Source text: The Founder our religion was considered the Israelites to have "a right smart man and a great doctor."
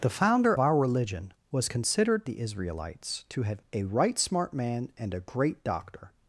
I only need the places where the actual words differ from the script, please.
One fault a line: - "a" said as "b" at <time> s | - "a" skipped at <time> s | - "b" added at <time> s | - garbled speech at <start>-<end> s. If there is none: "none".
none